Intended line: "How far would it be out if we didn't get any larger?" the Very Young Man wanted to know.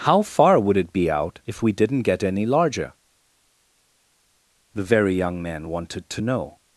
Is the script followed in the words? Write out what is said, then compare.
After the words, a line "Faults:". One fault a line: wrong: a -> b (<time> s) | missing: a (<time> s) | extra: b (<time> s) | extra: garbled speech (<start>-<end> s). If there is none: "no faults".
"How far would it be out if we didn't get any larger?" the Very Young Man wanted to know.
Faults:
no faults